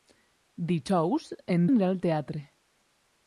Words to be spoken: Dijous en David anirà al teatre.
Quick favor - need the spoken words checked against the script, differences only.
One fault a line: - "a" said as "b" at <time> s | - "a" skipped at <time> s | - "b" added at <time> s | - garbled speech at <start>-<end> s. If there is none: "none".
- "David" skipped at 1.7 s